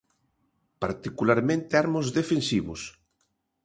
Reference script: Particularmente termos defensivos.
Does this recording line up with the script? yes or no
yes